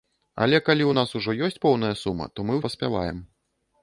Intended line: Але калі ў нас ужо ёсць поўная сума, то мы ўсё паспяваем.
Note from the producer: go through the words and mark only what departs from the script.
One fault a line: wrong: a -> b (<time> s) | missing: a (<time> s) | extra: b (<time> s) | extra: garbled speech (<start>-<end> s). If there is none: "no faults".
missing: ўсё (2.6 s)